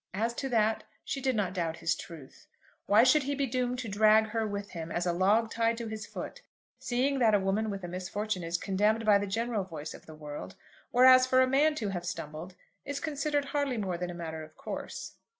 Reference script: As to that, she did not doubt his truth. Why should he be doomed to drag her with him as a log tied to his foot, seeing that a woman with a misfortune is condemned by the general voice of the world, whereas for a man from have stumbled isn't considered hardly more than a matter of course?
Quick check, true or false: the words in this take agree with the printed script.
false